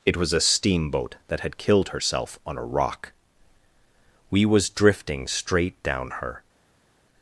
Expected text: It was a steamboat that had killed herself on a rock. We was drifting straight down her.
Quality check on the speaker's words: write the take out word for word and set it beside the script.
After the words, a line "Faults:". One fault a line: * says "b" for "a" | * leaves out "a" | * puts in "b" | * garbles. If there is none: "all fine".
It was a steamboat that had killed herself on a rock. We was drifting straight down her.
Faults:
all fine